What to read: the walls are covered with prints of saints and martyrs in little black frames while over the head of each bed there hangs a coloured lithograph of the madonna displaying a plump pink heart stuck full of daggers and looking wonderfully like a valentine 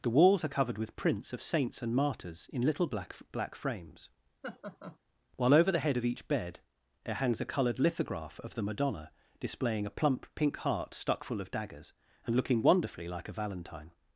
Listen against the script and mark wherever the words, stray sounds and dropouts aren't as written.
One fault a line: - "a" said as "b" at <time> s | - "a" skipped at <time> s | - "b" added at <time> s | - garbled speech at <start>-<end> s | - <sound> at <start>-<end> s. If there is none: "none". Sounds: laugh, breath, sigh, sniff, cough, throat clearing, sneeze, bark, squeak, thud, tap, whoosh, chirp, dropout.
- "black" added at 3.3 s
- laugh at 4.4-5.0 s